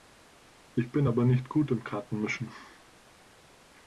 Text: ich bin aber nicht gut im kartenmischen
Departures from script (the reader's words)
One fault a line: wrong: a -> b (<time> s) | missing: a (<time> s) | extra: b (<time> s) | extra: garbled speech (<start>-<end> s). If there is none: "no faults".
no faults